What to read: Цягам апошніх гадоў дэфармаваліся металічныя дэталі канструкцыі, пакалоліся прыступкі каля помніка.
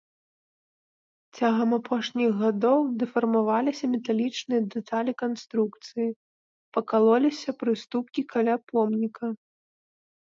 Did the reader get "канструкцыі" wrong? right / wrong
right